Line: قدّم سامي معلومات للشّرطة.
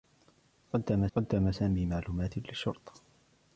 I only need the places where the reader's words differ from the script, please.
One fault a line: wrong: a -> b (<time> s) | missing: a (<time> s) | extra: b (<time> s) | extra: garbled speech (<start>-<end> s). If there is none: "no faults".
extra: قدّم (1.2 s)